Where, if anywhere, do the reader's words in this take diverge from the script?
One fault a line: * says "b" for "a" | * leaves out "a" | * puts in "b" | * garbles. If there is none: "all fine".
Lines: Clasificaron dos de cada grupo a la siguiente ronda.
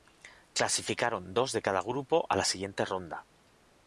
all fine